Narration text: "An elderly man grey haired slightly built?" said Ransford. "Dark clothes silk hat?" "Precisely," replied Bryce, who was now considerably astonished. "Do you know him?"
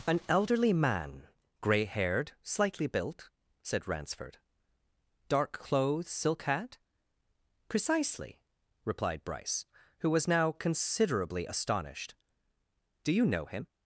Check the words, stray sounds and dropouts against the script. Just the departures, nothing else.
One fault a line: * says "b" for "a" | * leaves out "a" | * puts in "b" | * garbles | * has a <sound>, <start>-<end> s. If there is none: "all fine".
all fine